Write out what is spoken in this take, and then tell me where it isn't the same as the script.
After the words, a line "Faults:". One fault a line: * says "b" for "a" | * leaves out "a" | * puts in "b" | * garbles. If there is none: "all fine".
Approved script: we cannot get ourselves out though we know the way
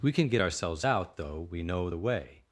we can get ourselves out though we know the way
Faults:
* says "can" for "cannot"